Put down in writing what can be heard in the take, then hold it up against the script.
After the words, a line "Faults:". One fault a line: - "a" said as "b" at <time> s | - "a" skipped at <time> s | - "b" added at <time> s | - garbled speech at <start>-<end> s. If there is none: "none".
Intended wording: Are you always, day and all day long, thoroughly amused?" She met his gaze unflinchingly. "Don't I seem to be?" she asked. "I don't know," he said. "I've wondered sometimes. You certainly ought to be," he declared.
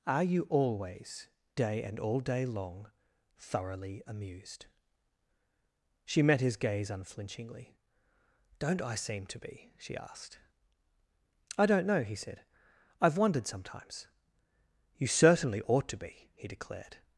Are you always, day and all day long, thoroughly amused?" She met his gaze unflinchingly. "Don't I seem to be?" she asked. "I don't know," he said. "I've wondered sometimes. You certainly ought to be," he declared.
Faults:
none